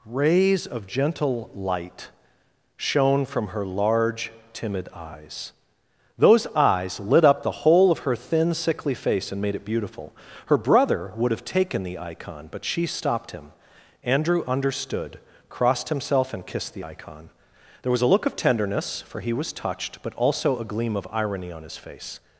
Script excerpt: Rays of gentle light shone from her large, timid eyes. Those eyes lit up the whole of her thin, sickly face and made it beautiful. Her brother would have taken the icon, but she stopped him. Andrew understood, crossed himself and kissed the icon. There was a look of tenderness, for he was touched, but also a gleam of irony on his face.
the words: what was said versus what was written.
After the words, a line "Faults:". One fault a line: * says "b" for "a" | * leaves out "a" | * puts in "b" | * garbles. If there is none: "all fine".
Rays of gentle light shone from her large, timid eyes. Those eyes lit up the whole of her thin, sickly face and made it beautiful. Her brother would have taken the icon, but she stopped him. Andrew understood, crossed himself and kissed the icon. There was a look of tenderness, for he was touched, but also a gleam of irony on his face.
Faults:
all fine